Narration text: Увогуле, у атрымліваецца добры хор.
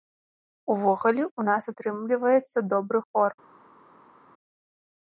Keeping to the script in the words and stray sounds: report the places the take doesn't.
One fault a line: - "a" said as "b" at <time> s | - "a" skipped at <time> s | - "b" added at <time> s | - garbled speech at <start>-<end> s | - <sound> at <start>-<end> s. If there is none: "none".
- "нас" added at 1.5 s